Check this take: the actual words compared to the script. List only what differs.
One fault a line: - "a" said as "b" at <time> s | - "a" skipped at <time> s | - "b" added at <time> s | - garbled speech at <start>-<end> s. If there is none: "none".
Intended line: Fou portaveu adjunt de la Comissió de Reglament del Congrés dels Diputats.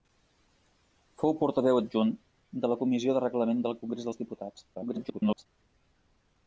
- garbled speech at 4.7-5.5 s